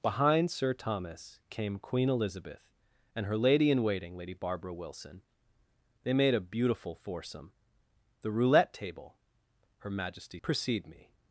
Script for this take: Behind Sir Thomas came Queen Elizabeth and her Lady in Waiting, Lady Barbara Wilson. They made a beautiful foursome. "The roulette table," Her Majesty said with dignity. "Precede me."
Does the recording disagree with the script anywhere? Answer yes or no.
yes